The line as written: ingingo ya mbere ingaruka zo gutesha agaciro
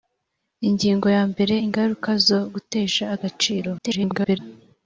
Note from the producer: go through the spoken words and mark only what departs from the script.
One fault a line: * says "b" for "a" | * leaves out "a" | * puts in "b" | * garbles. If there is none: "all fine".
* garbles